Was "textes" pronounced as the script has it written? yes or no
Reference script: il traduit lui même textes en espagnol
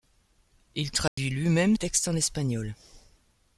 yes